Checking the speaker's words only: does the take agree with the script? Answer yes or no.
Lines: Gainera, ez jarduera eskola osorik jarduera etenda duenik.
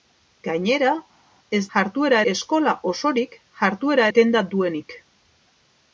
yes